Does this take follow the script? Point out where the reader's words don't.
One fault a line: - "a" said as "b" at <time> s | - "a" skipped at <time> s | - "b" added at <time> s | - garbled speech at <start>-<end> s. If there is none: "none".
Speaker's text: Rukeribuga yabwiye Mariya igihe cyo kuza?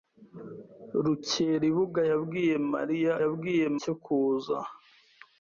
- "igihe" said as "yabwiye" at 3.2 s